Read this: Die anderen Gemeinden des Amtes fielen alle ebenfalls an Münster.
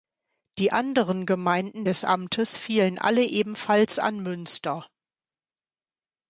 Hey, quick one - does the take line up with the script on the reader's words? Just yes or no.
yes